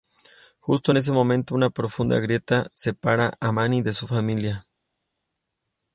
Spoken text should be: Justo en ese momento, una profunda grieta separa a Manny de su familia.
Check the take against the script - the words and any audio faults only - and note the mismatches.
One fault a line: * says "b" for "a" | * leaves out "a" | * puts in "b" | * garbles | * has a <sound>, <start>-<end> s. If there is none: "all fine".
all fine